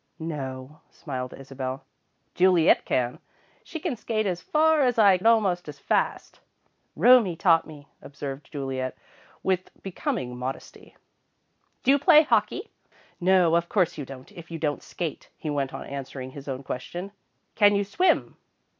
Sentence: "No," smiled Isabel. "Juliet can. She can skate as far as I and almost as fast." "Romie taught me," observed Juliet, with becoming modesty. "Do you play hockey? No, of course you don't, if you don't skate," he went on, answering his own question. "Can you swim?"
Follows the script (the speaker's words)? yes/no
yes